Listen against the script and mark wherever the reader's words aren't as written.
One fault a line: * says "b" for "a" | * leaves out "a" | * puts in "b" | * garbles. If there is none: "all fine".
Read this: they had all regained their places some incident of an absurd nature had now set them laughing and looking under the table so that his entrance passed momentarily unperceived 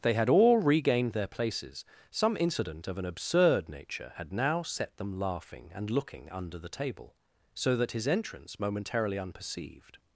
* leaves out "passed"